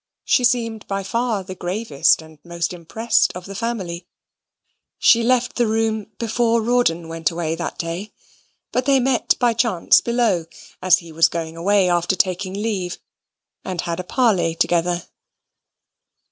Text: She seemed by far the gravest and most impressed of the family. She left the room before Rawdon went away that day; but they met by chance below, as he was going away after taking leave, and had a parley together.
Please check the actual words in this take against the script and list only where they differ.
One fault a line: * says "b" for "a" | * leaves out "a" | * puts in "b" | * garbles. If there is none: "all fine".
all fine